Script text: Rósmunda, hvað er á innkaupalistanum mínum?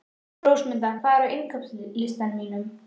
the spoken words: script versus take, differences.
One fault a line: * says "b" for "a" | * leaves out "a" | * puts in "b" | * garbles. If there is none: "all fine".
all fine